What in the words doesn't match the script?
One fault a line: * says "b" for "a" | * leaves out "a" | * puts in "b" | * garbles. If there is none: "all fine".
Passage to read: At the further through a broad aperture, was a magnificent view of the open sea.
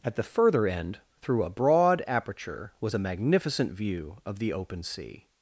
* puts in "end"